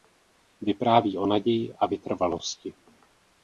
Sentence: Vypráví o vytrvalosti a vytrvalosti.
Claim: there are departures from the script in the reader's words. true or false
true